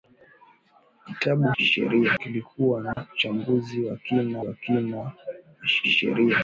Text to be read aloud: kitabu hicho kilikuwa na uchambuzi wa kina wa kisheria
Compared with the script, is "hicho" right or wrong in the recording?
wrong